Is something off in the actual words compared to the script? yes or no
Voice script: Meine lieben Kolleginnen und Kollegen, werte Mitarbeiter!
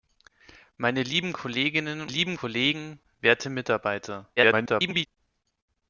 yes